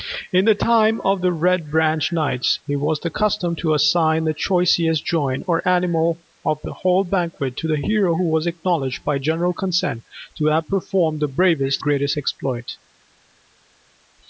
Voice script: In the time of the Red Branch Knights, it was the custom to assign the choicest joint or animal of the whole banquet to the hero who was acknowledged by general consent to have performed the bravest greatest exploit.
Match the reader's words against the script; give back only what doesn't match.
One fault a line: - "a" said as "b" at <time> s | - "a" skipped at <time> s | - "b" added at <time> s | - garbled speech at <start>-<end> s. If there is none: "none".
none